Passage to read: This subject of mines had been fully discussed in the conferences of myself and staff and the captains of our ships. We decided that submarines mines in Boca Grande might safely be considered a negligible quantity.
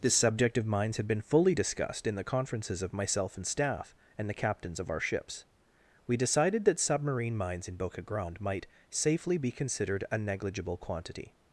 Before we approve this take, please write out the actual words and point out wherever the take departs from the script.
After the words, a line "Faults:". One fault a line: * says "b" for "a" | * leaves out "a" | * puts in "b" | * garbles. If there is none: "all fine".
This subject of mines had been fully discussed in the conferences of myself and staff and the captains of our ships. We decided that submarine mines in Boca Grande might safely be considered a negligible quantity.
Faults:
* says "submarine" for "submarines"